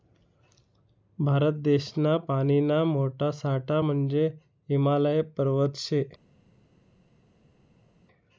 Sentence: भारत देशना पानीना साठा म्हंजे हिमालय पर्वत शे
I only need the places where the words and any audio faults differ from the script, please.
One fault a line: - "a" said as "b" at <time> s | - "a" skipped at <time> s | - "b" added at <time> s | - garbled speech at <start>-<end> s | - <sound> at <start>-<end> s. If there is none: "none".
- "मोठा" added at 2.9 s